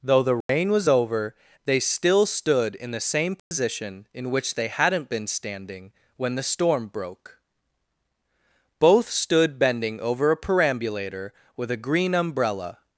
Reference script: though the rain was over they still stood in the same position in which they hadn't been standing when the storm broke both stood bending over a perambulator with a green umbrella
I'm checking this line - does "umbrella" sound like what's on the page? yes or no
yes